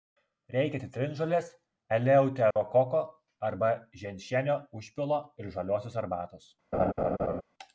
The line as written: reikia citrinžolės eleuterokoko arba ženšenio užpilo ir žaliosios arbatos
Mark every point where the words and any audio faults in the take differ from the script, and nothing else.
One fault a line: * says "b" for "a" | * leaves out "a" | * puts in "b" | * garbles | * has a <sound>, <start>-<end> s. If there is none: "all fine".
* has a dropout, 2.5-2.6 s
* has a laugh, 6.7-7.4 s